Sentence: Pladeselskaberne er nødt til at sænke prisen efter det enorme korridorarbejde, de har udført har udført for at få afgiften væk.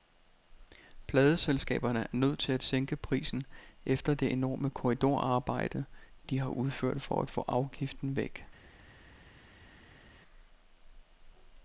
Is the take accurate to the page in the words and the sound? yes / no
no